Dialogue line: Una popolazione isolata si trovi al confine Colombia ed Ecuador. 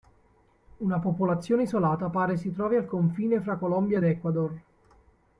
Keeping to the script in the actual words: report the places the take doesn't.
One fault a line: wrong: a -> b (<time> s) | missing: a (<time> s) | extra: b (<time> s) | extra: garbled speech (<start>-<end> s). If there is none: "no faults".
extra: pare (2.1 s)
extra: fra (3.4 s)